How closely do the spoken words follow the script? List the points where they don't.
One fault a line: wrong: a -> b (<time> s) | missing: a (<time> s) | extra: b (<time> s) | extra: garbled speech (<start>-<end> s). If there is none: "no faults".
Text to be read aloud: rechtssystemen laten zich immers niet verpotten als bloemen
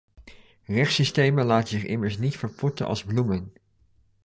no faults